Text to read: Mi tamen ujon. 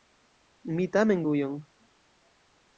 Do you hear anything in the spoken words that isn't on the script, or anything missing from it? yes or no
no